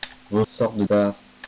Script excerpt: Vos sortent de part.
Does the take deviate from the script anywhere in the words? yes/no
no